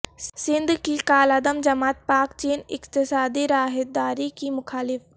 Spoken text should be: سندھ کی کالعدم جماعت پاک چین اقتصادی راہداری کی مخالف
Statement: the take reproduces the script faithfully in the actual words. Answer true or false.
true